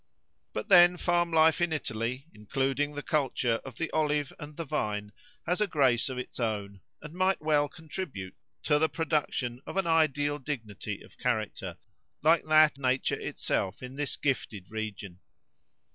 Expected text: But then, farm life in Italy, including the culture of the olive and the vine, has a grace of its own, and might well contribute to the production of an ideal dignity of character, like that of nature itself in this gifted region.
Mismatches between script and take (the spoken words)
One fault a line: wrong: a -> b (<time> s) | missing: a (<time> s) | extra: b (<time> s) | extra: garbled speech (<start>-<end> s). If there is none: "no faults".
missing: of (12.8 s)